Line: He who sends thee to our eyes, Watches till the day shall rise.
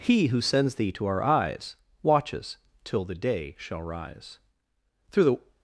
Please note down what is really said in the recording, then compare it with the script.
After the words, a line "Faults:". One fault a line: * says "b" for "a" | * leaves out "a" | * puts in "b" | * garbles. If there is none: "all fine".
He who sends thee to our eyes, Watches till the day shall rise. Through the
Faults:
* puts in "Through the"